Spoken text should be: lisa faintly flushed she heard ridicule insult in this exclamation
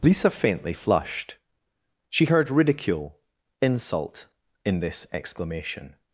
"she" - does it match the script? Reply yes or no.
yes